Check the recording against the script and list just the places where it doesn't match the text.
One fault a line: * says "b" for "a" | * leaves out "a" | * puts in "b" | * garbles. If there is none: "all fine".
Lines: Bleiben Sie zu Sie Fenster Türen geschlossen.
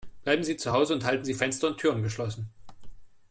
* puts in "Hause und halten"
* puts in "und"